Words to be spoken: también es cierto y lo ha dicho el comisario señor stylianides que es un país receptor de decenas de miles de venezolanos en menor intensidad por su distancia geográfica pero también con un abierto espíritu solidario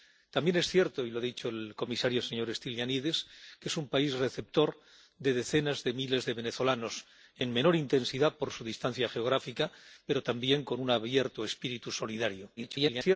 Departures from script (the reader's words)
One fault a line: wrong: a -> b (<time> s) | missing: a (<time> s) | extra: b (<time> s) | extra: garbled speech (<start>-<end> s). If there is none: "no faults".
extra: garbled speech (12.6-13.2 s)